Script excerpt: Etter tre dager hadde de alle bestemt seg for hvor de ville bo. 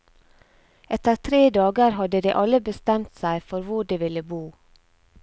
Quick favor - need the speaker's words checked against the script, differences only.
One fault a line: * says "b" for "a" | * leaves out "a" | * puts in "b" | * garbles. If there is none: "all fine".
all fine